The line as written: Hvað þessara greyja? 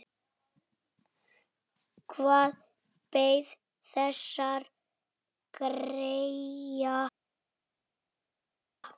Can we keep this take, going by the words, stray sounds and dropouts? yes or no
no